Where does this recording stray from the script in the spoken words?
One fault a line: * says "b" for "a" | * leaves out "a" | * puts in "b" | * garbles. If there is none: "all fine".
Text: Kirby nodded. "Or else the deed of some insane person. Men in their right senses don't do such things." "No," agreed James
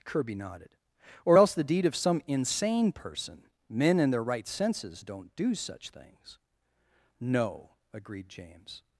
all fine